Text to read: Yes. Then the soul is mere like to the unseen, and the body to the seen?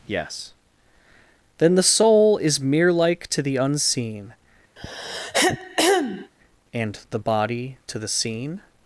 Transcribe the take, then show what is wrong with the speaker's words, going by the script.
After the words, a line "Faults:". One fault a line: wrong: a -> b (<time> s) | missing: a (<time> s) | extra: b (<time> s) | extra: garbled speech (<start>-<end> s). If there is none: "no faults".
Yes. Then the soul is mere like to the unseen, and the body to the seen?
Faults:
no faults